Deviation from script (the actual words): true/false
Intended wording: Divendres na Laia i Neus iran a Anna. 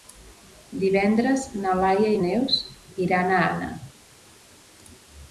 false